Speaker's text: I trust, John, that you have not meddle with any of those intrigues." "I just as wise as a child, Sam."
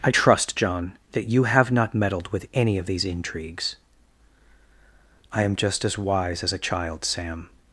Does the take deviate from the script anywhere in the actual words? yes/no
yes